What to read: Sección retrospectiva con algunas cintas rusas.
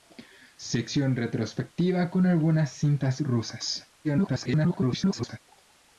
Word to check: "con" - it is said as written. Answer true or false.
true